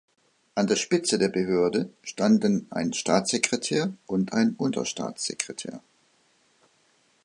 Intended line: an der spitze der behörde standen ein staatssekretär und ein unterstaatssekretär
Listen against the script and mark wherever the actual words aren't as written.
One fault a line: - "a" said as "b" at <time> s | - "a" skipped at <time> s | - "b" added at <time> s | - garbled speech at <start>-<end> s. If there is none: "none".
none